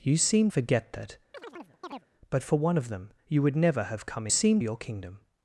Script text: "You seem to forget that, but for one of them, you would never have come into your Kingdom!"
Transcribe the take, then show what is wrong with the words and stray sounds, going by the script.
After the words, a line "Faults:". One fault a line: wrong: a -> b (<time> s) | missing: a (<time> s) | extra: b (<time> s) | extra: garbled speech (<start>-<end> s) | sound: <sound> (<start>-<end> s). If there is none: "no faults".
"You seem forget that, but for one of them, you would never have come seem your Kingdom!"
Faults:
missing: to (0.5 s)
sound: chirp (1.3-2.1 s)
wrong: into -> seem (4.3 s)